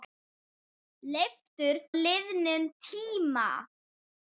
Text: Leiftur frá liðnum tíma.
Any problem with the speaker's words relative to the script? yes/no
yes